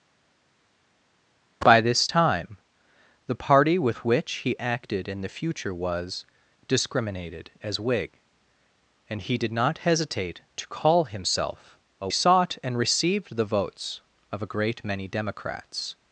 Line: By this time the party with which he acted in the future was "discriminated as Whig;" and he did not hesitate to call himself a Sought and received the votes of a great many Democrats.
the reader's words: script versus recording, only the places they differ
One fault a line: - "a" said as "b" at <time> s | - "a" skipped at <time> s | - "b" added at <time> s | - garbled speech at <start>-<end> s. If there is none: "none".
none